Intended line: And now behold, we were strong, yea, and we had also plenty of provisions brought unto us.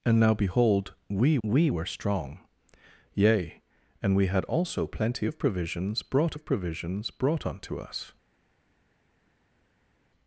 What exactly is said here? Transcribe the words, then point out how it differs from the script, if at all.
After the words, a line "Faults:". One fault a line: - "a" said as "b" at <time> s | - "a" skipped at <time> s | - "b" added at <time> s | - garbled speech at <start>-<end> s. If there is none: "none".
And now behold, we we were strong, yea, and we had also plenty of provisions brought of provisions brought unto us.
Faults:
- "we" added at 1.4 s
- "of provisions brought" added at 6.3 s